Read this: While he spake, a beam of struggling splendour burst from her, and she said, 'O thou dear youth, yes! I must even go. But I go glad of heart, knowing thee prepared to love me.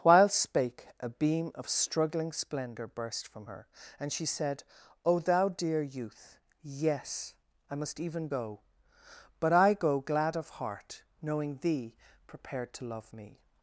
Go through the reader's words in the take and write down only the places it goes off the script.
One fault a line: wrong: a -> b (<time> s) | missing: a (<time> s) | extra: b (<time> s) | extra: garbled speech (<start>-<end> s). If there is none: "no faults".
missing: he (0.3 s)